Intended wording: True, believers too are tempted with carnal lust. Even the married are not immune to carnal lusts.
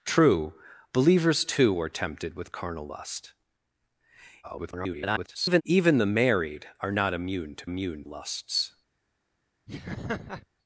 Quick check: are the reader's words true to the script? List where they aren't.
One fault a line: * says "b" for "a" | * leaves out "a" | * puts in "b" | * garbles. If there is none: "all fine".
* garbles
* says "immune" for "carnal"